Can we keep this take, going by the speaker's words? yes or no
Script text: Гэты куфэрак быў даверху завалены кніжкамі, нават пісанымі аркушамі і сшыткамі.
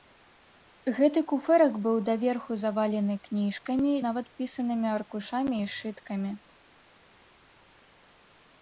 yes